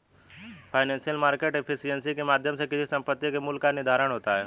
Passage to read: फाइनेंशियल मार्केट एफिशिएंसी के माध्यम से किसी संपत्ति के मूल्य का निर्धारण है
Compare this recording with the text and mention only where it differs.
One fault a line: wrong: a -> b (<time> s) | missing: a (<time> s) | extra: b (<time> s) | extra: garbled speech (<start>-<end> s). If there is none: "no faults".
extra: होता (4.1 s)